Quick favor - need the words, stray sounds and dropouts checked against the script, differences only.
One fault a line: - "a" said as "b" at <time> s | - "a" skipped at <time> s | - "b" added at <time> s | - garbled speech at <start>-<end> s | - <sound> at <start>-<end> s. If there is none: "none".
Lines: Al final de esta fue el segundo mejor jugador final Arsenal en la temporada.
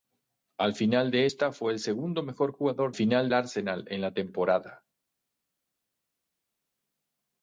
none